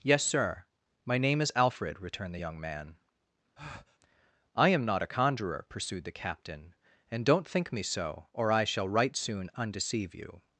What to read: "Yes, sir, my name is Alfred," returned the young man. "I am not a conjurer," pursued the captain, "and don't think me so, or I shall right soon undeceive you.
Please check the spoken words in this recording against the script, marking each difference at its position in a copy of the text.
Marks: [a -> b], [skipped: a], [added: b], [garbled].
"Yes, sir, my name is Alfred," returned the young man. "I am not a conjurer," pursued the captain, "and don't think me so, or I shall right soon undeceive you.